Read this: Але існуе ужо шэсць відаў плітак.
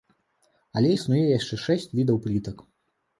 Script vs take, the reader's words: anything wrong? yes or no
yes